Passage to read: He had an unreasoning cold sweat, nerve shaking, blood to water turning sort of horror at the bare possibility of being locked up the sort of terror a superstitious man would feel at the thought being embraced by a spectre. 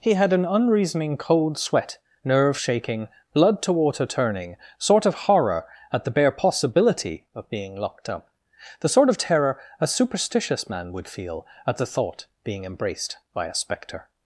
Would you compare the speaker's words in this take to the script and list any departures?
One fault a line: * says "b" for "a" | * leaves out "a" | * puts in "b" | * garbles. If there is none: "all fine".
all fine